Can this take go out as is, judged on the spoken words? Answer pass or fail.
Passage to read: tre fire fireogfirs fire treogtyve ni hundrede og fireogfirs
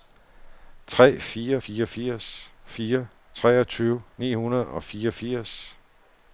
pass